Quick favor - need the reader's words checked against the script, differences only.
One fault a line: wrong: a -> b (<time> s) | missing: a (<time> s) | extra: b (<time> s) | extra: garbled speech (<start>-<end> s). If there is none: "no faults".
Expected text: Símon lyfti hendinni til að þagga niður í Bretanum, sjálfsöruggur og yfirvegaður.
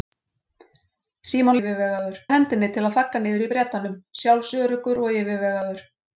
wrong: lyfti -> yfirvegaður (1.6 s)